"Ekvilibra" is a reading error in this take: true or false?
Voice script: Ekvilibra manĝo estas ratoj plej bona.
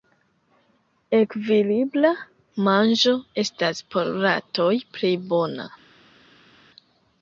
false